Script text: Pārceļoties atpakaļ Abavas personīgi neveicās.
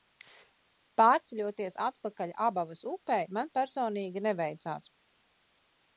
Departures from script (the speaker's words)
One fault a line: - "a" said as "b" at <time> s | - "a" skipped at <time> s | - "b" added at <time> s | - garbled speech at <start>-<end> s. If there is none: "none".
- "upei man" added at 3.0 s